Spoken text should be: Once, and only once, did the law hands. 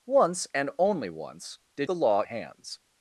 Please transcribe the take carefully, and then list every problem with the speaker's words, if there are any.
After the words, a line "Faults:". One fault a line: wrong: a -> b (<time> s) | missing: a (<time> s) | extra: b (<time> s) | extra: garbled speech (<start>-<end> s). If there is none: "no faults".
Once, and only once, did the law hands.
Faults:
no faults